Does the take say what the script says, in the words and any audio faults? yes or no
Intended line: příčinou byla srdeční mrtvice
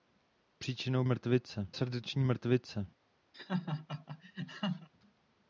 no